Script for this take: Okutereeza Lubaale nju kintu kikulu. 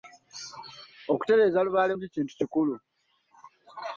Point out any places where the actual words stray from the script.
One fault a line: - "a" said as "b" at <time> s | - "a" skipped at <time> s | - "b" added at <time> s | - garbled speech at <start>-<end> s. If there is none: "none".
none